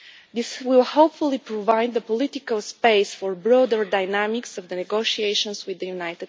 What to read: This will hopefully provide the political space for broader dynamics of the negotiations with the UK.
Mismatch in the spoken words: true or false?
false